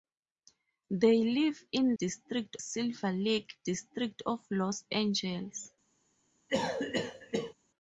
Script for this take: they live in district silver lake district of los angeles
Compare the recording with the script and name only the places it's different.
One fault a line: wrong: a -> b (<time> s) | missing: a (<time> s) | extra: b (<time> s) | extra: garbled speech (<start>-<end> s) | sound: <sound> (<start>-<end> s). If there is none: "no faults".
sound: cough (6.5-7.5 s)